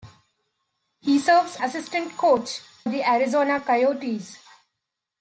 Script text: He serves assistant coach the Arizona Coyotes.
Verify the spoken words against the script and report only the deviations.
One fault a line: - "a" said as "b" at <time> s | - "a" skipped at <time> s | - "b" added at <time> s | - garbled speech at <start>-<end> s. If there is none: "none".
none